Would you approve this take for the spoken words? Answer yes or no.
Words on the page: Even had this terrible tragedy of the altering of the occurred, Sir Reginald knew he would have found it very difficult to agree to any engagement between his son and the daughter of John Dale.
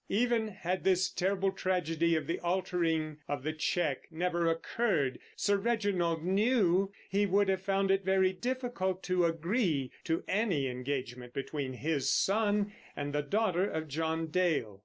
no